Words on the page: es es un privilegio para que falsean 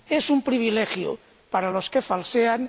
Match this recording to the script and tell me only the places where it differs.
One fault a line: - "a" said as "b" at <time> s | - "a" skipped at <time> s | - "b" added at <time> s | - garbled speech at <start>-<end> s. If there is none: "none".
- "es" skipped at 0.3 s
- "los" added at 1.7 s